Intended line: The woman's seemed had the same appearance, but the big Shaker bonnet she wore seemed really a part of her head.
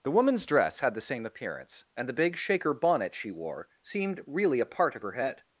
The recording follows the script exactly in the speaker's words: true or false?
false